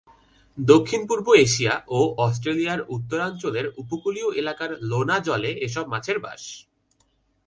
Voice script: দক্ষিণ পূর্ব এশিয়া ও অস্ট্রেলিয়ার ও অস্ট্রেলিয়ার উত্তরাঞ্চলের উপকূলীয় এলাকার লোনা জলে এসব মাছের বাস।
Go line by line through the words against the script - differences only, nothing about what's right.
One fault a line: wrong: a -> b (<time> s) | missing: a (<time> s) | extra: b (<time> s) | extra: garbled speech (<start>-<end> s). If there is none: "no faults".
missing: ও অস্ট্রেলিয়ার (2.8 s)